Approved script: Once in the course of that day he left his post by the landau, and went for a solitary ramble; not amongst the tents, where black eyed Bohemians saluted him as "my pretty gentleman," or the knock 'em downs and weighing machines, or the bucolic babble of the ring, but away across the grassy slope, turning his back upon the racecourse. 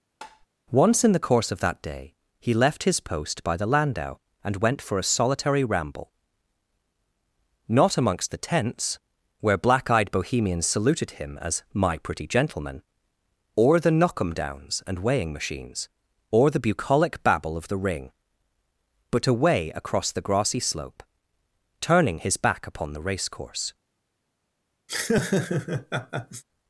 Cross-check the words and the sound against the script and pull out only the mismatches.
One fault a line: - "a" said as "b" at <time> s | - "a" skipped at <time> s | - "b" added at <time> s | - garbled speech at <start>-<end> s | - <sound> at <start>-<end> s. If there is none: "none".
- tap at 0.2-0.5 s
- laugh at 24.9-26.4 s